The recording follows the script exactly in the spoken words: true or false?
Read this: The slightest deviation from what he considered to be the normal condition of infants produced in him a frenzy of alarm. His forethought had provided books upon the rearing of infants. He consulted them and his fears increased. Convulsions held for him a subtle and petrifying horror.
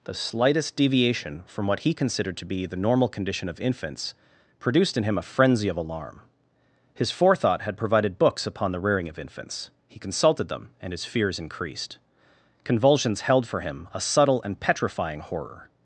true